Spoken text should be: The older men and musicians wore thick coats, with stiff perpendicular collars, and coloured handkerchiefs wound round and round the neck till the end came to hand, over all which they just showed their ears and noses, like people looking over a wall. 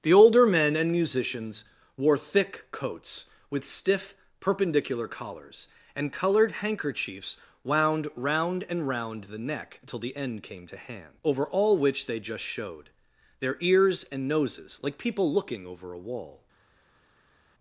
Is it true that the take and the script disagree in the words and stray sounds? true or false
false